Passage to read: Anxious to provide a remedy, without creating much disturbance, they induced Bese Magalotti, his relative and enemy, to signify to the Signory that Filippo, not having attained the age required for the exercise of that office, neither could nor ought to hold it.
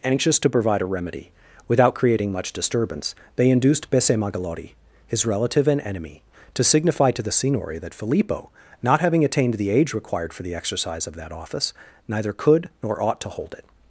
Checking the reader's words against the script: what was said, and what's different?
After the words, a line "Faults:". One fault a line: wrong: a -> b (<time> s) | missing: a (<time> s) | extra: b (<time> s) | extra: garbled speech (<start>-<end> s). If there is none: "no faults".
Anxious to provide a remedy, without creating much disturbance, they induced Bese Magalotti, his relative and enemy, to signify to the Signory that Filippo, not having attained the age required for the exercise of that office, neither could nor ought to hold it.
Faults:
no faults